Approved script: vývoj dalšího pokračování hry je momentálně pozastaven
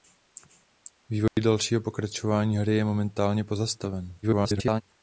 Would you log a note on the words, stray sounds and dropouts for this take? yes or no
yes